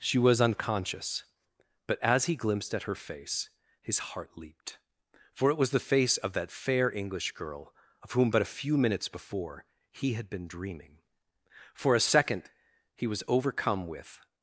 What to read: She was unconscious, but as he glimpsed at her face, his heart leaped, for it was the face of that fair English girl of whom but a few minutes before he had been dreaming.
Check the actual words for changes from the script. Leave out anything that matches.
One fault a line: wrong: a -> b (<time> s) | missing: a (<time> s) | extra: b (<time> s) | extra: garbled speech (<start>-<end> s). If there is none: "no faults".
extra: For a second he was overcome with (11.7 s)